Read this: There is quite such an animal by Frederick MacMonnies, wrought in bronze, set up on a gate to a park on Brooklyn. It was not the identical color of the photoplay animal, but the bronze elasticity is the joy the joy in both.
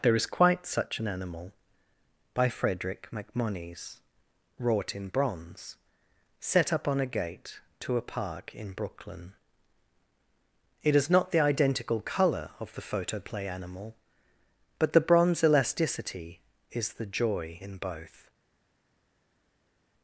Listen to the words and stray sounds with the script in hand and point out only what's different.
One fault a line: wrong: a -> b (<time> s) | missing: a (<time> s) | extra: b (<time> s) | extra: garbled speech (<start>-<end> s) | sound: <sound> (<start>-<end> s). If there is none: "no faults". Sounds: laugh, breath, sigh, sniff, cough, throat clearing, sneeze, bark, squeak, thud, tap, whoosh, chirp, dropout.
wrong: on -> in (8.5 s)
wrong: was -> is (11.0 s)
missing: the joy (17.6 s)